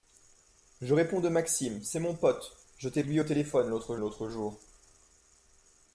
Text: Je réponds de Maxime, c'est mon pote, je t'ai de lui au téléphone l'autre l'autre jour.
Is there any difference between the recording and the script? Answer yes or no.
no